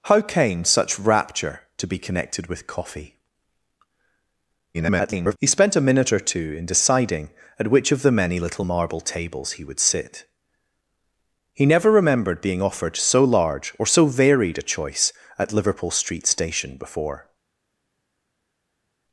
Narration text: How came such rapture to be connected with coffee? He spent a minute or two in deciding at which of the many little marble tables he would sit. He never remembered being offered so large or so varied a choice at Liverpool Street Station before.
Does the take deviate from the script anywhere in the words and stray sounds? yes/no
yes